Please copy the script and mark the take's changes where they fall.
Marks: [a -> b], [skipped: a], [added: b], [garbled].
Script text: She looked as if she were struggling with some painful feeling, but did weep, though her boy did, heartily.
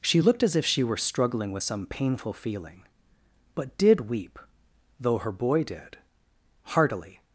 She looked as if she were struggling with some painful feeling, but did weep, though her boy did, heartily.